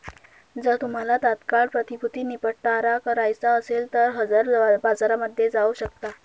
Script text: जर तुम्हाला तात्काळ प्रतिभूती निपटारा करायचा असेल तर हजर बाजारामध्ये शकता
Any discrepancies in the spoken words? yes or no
yes